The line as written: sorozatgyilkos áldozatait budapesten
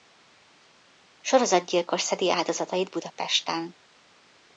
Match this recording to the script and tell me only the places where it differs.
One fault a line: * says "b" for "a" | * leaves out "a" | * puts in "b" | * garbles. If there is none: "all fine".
* puts in "szedi"